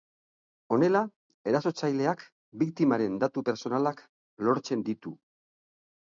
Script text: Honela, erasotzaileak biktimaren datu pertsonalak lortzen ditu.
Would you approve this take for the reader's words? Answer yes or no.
yes